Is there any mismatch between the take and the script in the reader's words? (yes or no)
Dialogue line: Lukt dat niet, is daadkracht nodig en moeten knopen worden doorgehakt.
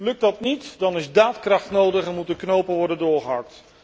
yes